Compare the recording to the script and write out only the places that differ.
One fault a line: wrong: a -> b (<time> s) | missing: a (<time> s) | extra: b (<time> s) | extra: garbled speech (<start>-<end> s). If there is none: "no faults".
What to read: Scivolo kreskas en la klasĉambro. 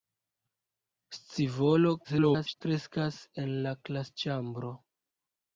extra: garbled speech (2.0-2.6 s)